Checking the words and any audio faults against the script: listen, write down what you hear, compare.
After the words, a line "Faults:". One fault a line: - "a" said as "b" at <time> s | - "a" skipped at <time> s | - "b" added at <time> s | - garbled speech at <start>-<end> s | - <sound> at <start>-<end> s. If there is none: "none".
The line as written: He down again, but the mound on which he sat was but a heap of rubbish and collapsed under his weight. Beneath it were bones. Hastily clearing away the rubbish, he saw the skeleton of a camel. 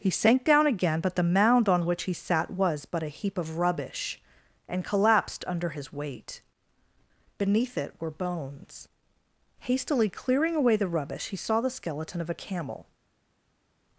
He sank down again, but the mound on which he sat was but a heap of rubbish and collapsed under his weight. Beneath it were bones. Hastily clearing away the rubbish, he saw the skeleton of a camel.
Faults:
- "sank" added at 0.1 s